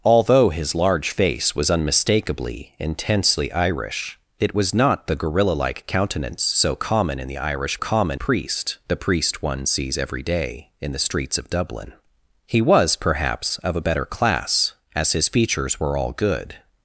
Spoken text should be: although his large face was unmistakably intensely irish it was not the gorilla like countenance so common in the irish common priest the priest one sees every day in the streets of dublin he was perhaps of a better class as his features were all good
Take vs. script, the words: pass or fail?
pass